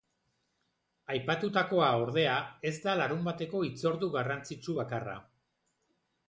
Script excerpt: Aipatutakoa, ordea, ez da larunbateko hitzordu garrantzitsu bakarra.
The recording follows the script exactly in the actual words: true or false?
true